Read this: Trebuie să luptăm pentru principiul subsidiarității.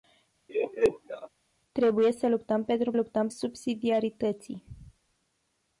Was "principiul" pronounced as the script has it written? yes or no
no